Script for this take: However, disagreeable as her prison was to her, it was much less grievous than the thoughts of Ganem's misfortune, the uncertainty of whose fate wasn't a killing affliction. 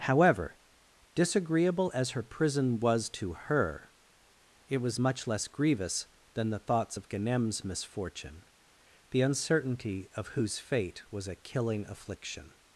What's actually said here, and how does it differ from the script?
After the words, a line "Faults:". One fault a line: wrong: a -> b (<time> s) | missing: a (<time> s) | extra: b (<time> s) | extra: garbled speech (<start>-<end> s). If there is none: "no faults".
However, disagreeable as her prison was to her, it was much less grievous than the thoughts of Ganem's misfortune, the uncertainty of whose fate was a killing affliction.
Faults:
wrong: wasn't -> was (11.1 s)